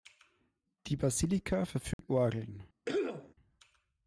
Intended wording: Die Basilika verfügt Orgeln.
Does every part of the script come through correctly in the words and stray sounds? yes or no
no